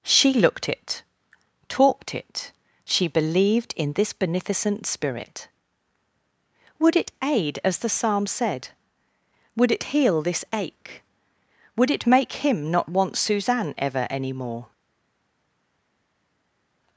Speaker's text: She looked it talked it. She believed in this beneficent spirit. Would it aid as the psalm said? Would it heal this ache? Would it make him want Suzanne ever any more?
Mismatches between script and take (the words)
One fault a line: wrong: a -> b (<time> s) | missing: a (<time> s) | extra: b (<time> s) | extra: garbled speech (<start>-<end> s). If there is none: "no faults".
extra: not (12.7 s)